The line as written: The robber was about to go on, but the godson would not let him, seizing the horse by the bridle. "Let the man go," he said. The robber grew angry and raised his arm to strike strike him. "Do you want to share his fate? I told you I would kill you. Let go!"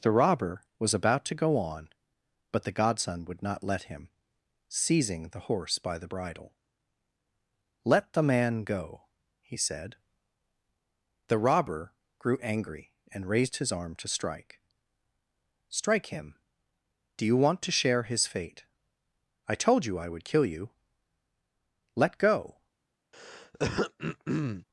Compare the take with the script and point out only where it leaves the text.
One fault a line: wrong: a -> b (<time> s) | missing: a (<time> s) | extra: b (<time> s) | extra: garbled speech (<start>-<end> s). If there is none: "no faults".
no faults